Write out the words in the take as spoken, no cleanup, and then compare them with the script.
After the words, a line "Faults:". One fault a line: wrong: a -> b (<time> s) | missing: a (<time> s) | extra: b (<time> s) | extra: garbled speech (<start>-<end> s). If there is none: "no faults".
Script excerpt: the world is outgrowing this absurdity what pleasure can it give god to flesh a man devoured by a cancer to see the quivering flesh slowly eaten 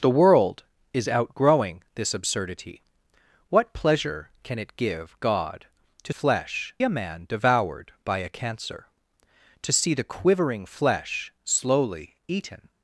the world is outgrowing this absurdity what pleasure can it give god to flesh a man devoured by a cancer to see the quivering flesh slowly eaten
Faults:
no faults